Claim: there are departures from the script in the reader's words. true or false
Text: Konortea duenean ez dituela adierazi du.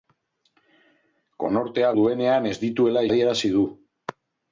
false